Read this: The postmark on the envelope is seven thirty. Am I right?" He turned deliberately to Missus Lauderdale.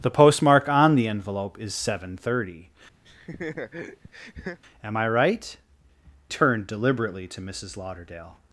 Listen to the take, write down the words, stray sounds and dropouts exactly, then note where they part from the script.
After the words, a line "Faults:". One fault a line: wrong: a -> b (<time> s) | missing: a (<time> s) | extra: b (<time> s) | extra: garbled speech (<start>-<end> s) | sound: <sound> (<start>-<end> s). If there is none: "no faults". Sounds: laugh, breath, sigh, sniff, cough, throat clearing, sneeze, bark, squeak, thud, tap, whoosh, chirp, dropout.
The postmark on the envelope is seven thirty. Am I right?" Turned deliberately to Missus Lauderdale.
Faults:
sound: laugh (3.0-4.6 s)
missing: He (5.6 s)